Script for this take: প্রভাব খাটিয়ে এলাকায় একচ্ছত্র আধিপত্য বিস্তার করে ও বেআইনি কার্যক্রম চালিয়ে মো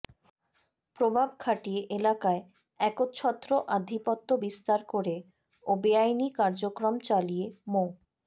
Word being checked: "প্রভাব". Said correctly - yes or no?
yes